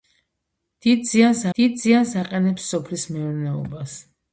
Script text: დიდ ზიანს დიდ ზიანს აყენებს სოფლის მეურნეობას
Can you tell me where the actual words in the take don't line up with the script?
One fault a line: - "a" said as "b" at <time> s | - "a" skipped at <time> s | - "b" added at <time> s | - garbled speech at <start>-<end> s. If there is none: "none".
none